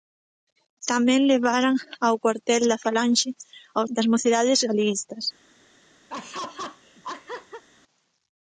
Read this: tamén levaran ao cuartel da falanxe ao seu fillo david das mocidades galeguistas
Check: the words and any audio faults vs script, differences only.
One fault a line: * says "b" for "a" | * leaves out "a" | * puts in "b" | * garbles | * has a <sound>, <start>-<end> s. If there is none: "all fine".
* leaves out "seu fillo david"
* has a laugh, 6.1-7.6 s